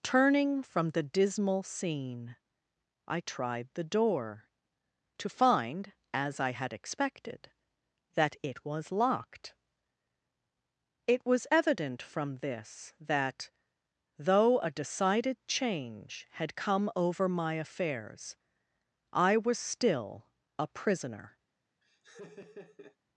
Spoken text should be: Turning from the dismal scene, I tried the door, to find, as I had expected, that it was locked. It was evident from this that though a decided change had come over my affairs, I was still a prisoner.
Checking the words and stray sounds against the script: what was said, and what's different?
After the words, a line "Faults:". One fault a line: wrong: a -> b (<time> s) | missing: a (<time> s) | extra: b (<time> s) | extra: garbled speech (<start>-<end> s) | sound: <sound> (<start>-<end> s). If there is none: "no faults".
Turning from the dismal scene, I tried the door, to find, as I had expected, that it was locked. It was evident from this that though a decided change had come over my affairs, I was still a prisoner.
Faults:
sound: laugh (21.8-23.0 s)